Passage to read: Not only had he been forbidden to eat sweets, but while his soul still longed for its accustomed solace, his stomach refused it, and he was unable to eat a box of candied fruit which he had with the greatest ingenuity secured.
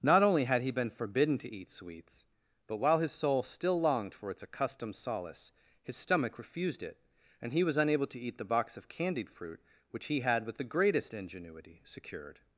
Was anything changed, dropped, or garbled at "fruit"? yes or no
no